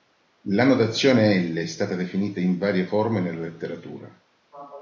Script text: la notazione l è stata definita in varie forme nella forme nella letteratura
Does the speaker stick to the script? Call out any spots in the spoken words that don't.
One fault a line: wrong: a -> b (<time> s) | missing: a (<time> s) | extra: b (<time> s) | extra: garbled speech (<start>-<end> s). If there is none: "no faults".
missing: forme nella (3.4 s)